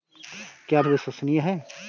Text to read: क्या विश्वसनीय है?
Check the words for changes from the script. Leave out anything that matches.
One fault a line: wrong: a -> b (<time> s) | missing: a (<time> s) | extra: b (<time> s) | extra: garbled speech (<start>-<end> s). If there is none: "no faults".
no faults